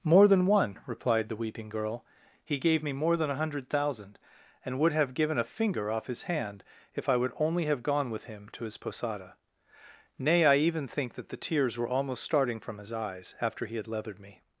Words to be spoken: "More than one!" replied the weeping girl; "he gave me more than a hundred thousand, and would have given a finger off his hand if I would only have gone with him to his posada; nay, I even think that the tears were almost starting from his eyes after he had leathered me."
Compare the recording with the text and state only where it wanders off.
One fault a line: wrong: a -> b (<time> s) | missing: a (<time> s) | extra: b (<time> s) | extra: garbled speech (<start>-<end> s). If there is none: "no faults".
no faults